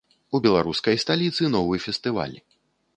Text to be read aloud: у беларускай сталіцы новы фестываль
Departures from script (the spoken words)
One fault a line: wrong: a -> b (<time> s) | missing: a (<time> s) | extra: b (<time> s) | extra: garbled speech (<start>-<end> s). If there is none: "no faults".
no faults